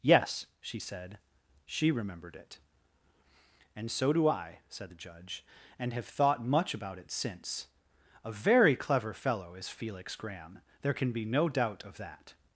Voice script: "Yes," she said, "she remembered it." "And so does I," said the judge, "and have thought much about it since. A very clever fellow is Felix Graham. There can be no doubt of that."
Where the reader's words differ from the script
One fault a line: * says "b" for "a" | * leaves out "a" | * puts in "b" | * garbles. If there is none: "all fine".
* says "do" for "does"